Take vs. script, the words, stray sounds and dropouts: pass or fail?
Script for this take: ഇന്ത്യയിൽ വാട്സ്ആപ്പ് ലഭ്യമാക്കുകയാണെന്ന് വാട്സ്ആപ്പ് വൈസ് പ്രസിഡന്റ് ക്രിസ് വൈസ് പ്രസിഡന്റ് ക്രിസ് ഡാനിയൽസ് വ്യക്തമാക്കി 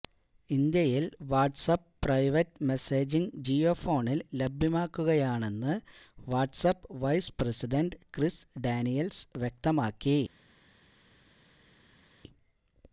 fail